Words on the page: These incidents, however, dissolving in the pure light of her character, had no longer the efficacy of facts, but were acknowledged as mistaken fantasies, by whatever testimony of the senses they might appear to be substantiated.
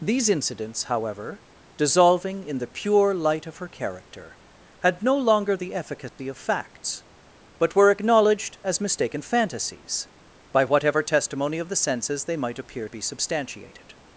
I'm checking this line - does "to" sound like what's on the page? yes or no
no